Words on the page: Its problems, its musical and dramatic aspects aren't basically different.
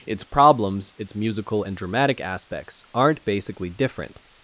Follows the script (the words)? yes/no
yes